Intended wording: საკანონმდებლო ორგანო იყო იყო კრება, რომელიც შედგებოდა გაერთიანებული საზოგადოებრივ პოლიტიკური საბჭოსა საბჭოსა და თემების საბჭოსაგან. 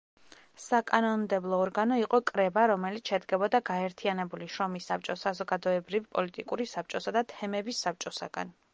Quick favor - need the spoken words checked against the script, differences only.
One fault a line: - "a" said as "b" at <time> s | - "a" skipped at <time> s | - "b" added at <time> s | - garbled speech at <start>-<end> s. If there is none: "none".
- "იყო" skipped at 2.2 s
- "შრომის საბჭოს" added at 4.5 s
- "საბჭოსა" skipped at 7.2 s